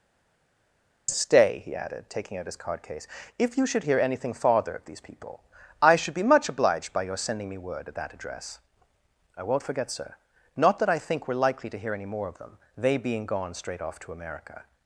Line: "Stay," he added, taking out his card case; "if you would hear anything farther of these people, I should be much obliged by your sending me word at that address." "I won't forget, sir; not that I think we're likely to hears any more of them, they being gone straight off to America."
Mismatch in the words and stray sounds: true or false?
true